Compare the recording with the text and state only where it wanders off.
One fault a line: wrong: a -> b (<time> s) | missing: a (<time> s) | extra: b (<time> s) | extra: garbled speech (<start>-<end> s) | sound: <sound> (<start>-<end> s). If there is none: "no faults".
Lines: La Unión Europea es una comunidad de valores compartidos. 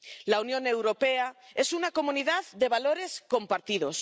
no faults